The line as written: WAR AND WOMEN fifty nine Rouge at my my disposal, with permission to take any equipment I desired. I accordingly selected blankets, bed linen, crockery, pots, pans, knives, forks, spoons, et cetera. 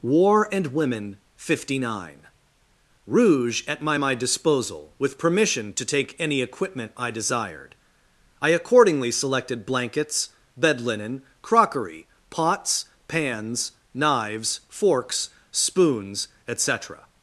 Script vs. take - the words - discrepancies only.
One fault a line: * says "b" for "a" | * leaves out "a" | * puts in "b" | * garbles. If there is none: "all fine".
all fine